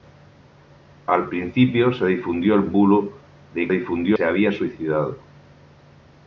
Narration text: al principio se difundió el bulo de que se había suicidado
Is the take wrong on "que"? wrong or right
wrong